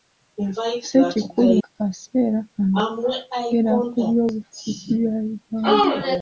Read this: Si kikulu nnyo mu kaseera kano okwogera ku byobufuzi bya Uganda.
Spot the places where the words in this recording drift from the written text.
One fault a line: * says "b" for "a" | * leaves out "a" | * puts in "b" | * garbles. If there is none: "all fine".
* leaves out "nnyo mu"